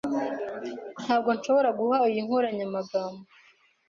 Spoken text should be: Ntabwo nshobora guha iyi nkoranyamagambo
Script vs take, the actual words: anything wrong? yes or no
no